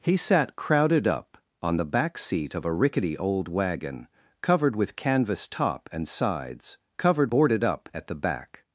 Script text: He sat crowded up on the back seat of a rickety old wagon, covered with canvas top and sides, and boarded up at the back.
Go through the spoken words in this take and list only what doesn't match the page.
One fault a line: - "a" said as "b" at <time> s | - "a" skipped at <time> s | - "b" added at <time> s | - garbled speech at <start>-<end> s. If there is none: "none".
- "and" said as "covered" at 7.0 s